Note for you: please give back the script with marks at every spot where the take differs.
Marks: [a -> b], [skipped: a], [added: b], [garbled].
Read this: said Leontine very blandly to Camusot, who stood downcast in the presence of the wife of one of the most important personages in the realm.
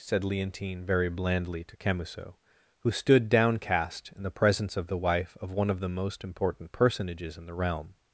said Leontine very blandly to Camusot, who stood downcast in the presence of the wife of one of the most important personages in the realm.